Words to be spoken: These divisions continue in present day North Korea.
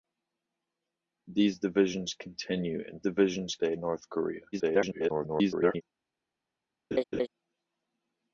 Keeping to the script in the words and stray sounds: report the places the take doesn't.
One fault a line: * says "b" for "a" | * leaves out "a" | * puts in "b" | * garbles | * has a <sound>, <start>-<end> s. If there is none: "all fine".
* says "divisions" for "present"
* garbles
* has a laugh, 6.9-7.3 s